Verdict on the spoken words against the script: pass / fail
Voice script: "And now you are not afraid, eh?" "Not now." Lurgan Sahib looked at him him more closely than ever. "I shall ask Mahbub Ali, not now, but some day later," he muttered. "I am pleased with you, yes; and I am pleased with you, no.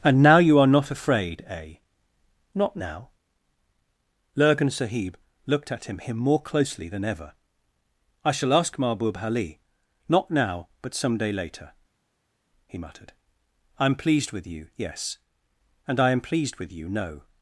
pass